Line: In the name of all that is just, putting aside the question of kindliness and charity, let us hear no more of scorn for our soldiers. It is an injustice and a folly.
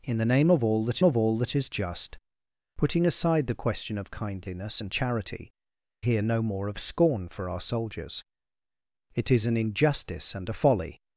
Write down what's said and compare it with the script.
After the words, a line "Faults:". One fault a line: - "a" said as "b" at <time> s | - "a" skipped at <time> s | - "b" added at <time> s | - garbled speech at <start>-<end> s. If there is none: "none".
In the name of all that of all that is just, putting aside the question of kindliness and charity, hear no more of scorn for our soldiers. It is an injustice and a folly.
Faults:
- "of all that" added at 1.0 s
- "let us" skipped at 5.5 s